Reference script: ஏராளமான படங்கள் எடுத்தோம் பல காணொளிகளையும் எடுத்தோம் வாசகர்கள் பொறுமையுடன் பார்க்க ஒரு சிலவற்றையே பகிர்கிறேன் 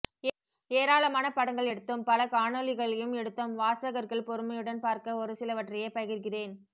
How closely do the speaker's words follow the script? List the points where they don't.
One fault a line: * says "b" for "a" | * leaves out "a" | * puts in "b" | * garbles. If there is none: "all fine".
all fine